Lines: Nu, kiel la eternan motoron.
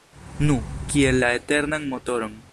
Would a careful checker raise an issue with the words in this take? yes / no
no